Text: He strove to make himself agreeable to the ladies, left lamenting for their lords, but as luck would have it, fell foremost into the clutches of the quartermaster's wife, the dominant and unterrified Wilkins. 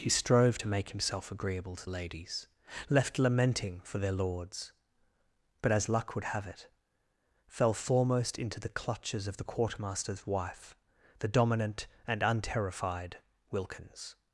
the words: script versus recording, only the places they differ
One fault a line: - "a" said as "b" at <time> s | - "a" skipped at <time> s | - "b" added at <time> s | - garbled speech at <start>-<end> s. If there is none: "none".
- "the" skipped at 1.8 s